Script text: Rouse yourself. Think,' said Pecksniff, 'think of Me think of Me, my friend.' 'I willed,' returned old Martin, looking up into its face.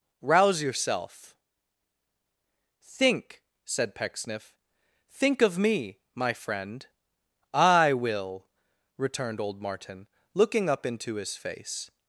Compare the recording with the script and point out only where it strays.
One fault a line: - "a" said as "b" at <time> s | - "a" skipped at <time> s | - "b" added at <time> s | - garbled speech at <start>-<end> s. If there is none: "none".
- "think of Me" skipped at 6.0 s
- "willed" said as "will" at 7.9 s
- "its" said as "his" at 11.2 s